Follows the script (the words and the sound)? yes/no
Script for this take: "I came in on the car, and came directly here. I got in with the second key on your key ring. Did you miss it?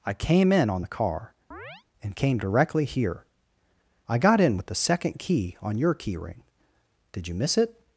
no